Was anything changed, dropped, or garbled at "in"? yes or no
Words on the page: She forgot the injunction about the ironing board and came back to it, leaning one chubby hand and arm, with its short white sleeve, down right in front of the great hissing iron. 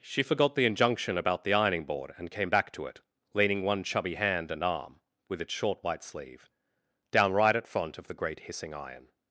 yes